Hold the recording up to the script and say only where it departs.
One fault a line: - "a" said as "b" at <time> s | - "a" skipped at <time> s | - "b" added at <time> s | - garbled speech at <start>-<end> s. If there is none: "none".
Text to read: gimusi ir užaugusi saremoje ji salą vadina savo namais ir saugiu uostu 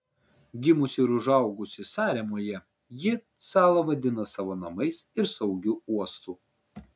none